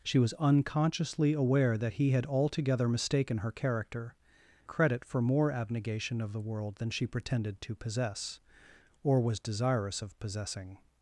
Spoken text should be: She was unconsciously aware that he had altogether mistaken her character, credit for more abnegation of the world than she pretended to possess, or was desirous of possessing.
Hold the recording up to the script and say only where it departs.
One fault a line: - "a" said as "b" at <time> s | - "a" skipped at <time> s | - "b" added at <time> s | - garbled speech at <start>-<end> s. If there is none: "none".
none